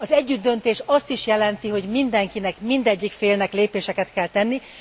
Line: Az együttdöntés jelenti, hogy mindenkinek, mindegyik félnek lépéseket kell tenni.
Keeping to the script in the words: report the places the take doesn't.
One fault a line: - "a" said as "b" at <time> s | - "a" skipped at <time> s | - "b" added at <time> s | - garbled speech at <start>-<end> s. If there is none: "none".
- "azt is" added at 0.8 s